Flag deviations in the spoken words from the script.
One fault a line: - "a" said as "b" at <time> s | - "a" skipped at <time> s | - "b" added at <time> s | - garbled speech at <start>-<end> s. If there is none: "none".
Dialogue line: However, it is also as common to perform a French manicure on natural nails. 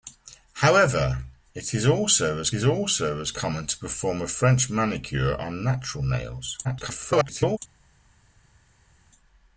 - "is also as" added at 2.5 s
- garbled speech at 6.6-7.6 s